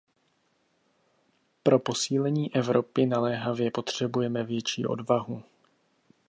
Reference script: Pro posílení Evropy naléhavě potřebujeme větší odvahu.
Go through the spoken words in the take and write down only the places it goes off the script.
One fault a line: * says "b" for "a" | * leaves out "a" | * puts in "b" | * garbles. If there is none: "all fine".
all fine